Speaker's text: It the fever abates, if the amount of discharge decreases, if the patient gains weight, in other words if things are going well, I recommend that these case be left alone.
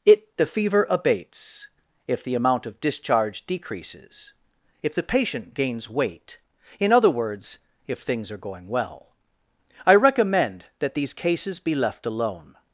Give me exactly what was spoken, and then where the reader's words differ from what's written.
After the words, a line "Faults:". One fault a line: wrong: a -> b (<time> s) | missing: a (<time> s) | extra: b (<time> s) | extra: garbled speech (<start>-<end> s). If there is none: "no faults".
It the fever abates, if the amount of discharge decreases, if the patient gains weight, in other words if things are going well, I recommend that these cases be left alone.
Faults:
wrong: case -> cases (11.1 s)